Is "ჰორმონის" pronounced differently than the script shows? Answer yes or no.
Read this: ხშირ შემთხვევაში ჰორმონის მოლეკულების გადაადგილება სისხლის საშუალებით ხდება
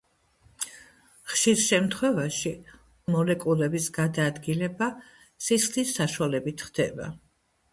yes